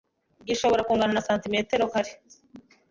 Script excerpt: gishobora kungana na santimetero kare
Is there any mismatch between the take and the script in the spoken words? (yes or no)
no